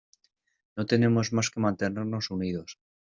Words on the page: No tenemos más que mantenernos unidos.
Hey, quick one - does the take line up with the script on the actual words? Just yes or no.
yes